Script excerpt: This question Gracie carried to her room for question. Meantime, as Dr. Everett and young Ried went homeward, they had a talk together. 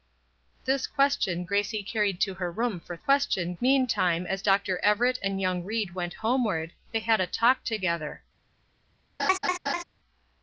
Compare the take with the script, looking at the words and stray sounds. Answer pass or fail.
fail